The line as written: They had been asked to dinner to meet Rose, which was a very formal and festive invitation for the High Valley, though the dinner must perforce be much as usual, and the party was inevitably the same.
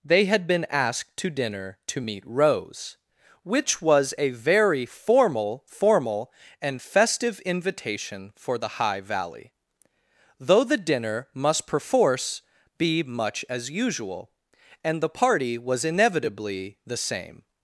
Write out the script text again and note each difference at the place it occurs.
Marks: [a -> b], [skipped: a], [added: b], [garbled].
They had been asked to dinner to meet Rose, which was a very formal [added: formal] and festive invitation for the High Valley, though the dinner must perforce be much as usual, and the party was inevitably the same.